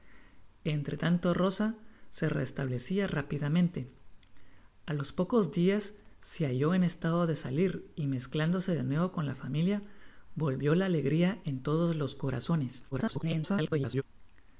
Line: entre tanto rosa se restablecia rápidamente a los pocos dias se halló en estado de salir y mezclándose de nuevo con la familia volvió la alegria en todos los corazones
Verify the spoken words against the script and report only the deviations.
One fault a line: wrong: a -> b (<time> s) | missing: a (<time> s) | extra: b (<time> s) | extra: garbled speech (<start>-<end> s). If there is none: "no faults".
extra: garbled speech (12.9-14.0 s)